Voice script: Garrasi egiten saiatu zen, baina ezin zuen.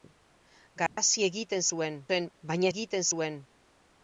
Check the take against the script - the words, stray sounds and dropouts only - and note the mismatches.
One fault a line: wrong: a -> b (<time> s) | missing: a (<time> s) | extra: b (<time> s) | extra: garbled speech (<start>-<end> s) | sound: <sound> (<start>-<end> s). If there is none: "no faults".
sound: dropout (0.9-1.0 s)
wrong: saiatu -> zuen (1.7 s)
wrong: ezin -> egiten (2.7 s)